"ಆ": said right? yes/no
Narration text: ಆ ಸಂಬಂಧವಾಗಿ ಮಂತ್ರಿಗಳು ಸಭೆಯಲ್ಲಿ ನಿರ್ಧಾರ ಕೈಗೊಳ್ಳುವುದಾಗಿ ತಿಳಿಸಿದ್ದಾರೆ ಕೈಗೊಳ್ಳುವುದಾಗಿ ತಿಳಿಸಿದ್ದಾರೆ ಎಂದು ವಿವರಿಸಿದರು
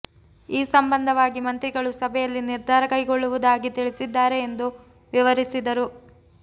no